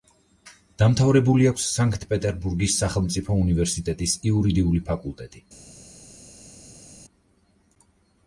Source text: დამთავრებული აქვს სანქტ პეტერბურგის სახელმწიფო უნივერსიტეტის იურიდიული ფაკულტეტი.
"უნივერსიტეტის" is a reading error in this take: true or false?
false